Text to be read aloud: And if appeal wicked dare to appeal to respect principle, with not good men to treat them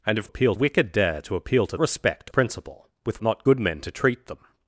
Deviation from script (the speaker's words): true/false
false